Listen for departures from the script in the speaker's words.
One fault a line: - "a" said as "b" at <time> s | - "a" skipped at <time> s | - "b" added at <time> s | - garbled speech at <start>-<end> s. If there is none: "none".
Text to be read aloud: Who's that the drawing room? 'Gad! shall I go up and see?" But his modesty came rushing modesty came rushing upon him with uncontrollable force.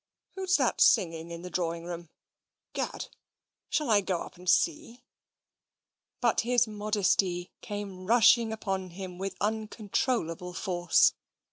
- "singing in" added at 0.8 s
- "modesty came rushing" skipped at 8.5 s